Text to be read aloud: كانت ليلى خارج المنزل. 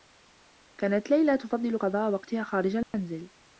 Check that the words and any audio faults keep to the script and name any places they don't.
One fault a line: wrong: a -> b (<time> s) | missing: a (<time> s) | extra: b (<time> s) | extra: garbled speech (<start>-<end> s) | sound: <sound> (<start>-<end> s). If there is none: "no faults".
extra: تفضّل قضاء وقتها (1.4 s)
sound: dropout (2.8-2.9 s)